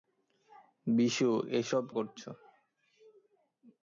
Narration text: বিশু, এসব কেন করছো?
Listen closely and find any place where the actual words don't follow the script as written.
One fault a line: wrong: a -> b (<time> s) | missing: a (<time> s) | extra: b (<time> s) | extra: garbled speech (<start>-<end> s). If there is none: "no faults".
missing: কেন (1.8 s)